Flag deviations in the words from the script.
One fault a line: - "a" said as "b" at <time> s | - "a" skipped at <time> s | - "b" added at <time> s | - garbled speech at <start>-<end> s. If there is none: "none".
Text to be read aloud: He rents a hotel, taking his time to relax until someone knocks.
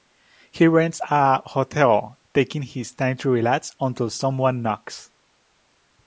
none